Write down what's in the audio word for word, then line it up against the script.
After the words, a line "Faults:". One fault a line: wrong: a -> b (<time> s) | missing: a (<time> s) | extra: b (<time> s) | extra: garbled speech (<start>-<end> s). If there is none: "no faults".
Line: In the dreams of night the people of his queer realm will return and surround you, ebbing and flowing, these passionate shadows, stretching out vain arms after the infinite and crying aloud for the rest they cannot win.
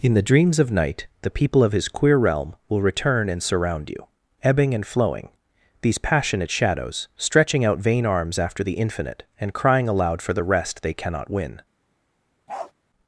In the dreams of night the people of his queer realm will return and surround you, ebbing and flowing, these passionate shadows, stretching out vain arms after the infinite and crying aloud for the rest they cannot win.
Faults:
no faults